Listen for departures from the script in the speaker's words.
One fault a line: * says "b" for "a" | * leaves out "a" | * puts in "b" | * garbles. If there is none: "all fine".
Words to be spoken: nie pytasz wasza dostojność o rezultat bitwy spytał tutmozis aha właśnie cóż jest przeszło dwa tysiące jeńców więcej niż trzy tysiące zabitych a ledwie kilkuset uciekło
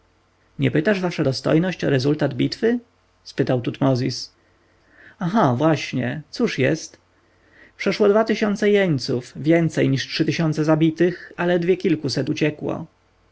all fine